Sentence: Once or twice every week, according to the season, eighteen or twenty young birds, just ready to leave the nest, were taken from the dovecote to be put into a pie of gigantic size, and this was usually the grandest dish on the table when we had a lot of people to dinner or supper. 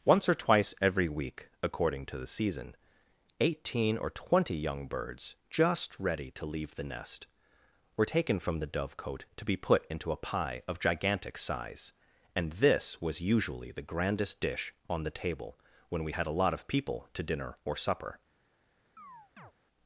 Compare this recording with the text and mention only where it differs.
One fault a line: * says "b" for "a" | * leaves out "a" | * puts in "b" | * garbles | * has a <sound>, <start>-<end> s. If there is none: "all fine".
* has a chirp, 19.0-19.5 s